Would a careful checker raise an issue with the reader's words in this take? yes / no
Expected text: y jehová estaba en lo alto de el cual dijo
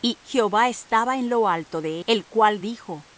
no